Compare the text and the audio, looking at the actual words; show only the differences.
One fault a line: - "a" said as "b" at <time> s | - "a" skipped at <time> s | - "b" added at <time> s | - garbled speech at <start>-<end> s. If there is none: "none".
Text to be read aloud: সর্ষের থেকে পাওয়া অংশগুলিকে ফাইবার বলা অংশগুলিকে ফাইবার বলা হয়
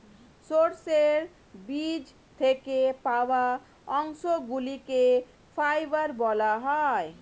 - "বীজ" added at 1.7 s
- "অংশগুলিকে ফাইবার বলা" skipped at 6.5 s